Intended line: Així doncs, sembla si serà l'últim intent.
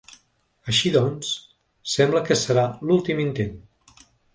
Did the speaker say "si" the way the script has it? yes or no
no